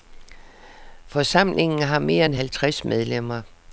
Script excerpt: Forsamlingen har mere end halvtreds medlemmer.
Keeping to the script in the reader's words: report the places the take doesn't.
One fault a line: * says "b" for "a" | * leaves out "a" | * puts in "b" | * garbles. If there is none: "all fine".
all fine